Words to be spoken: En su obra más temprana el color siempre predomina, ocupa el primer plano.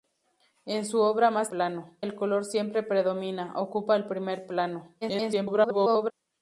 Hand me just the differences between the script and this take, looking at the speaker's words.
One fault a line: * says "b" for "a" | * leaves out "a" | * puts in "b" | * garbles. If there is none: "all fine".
* says "plano" for "temprana"
* garbles